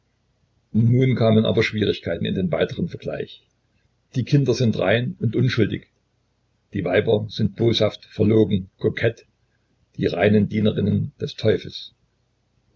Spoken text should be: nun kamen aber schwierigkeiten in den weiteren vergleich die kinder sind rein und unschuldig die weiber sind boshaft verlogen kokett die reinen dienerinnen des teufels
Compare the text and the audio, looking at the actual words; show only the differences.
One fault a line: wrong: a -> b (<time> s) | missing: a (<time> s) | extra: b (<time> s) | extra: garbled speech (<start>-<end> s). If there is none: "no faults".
no faults